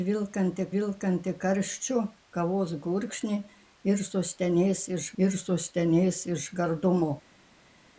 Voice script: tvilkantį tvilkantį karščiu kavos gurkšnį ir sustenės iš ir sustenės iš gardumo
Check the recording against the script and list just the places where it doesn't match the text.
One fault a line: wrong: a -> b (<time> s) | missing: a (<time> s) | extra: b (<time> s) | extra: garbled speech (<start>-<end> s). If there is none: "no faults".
no faults